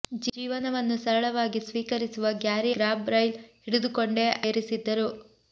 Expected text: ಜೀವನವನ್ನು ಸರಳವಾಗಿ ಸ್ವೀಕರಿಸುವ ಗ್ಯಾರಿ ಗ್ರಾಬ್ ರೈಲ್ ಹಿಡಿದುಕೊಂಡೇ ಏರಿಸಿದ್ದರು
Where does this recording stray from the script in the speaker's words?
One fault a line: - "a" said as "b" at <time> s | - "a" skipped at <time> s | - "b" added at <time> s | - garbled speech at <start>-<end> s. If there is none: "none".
none